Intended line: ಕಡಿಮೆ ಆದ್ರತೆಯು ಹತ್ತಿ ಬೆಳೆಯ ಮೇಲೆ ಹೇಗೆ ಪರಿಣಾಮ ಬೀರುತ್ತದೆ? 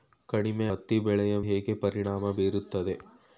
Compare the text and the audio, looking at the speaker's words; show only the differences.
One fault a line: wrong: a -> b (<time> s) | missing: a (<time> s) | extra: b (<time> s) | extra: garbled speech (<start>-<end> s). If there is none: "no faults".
missing: ಆದ್ರತೆಯು (0.7 s)
missing: ಮೇಲೆ (1.4 s)